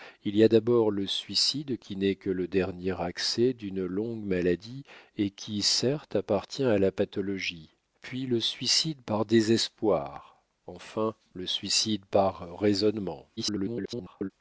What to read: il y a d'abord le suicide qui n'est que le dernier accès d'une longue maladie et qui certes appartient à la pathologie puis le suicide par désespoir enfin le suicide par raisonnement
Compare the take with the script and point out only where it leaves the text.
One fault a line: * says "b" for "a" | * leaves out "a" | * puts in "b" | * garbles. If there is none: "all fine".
* garbles